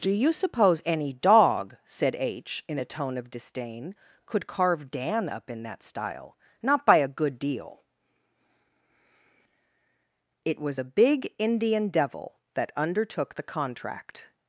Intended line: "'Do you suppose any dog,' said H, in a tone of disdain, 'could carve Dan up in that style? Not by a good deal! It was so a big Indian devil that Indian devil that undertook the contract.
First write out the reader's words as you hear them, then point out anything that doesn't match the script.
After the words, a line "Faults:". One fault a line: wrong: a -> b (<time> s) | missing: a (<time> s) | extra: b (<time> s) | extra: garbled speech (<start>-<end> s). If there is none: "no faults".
"'Do you suppose any dog,' said H, in a tone of disdain, 'could carve Dan up in that style? Not by a good deal! It was a big Indian devil that undertook the contract.
Faults:
missing: so (10.8 s)
missing: Indian devil that (12.7 s)